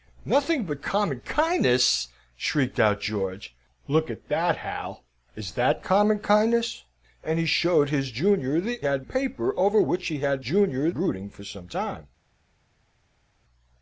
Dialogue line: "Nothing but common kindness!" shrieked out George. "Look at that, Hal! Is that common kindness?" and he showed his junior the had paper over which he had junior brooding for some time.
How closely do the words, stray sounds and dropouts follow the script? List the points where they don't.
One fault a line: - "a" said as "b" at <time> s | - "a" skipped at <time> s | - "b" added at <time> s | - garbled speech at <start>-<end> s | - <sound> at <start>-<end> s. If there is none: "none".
none